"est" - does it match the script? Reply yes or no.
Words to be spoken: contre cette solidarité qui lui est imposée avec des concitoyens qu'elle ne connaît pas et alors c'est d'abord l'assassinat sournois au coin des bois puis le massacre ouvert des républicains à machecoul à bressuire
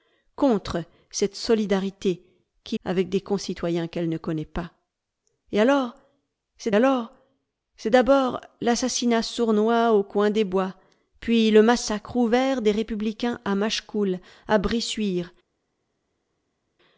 no